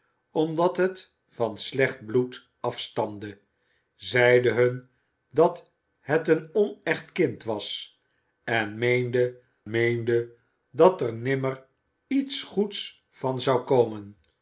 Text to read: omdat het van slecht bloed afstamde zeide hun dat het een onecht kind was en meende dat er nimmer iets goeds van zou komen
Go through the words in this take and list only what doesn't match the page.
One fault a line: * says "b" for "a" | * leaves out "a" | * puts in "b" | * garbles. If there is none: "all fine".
* puts in "meende"